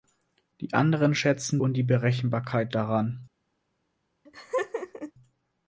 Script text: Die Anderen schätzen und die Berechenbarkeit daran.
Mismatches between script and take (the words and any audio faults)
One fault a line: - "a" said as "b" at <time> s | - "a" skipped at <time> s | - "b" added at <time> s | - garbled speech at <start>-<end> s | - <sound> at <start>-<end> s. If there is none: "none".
- laugh at 4.3-5.1 s